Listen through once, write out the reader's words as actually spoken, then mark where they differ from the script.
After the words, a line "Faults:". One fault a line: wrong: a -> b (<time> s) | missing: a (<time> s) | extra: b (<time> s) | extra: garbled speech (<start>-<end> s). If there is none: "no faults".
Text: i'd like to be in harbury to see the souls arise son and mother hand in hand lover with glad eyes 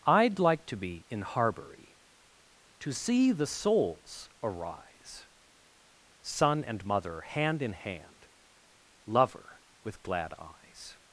i'd like to be in harbury to see the souls arise son and mother hand in hand lover with glad eyes
Faults:
no faults